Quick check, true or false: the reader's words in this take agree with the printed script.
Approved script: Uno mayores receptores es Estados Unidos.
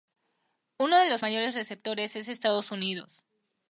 false